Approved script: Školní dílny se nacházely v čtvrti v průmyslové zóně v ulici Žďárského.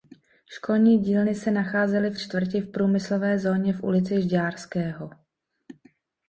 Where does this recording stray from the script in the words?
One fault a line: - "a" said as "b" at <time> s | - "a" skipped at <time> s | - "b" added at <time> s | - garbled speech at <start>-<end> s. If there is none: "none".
none